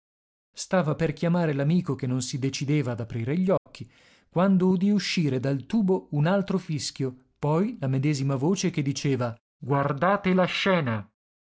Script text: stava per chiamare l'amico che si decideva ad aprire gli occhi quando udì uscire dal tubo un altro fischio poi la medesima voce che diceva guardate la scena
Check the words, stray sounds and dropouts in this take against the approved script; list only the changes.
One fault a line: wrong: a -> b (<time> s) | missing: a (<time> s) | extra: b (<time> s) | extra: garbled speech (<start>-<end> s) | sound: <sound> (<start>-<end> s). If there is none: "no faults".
extra: non (2.1 s)
sound: dropout (3.6-3.7 s)